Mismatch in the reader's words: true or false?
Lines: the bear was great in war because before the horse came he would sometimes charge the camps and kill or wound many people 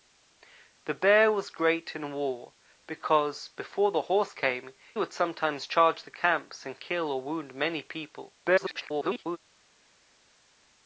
true